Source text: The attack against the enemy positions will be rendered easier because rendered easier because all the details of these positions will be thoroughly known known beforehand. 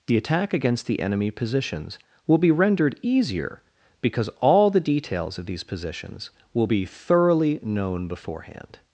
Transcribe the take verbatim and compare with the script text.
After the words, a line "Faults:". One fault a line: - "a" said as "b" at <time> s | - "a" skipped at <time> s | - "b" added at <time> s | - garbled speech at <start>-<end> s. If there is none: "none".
The attack against the enemy positions will be rendered easier because all the details of these positions will be thoroughly known beforehand.
Faults:
- "rendered easier because" skipped at 4.3 s
- "known" skipped at 8.1 s